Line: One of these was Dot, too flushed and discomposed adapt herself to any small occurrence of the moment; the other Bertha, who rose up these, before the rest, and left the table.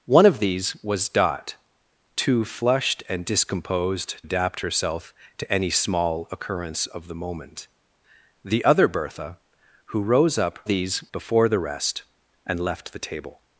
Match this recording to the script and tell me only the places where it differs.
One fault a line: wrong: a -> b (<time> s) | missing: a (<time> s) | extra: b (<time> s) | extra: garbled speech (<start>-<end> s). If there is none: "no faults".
no faults